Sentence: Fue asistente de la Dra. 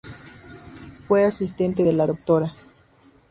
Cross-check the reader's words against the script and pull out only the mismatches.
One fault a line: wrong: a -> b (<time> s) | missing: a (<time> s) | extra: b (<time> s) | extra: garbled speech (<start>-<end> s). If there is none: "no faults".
no faults